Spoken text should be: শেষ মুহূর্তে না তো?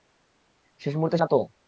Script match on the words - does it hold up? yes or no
yes